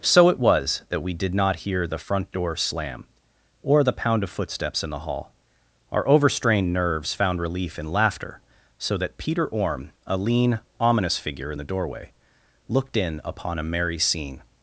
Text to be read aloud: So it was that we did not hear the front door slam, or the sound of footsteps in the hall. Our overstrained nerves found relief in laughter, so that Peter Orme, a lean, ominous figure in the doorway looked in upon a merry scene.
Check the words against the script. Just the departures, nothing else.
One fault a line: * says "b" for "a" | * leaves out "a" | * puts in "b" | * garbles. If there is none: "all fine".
* says "pound" for "sound"